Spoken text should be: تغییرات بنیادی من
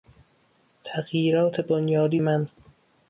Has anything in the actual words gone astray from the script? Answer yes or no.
no